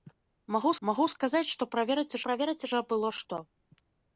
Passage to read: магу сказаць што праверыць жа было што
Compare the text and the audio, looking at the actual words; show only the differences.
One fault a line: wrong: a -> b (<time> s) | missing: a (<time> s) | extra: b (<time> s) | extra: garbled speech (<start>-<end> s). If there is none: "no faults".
extra: магу (0.9 s)
extra: праверыць (2.3 s)